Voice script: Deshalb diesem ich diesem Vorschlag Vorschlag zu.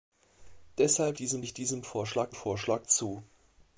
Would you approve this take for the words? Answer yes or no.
yes